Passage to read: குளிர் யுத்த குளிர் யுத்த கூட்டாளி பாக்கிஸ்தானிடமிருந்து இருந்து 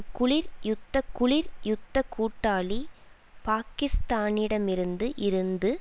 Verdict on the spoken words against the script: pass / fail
pass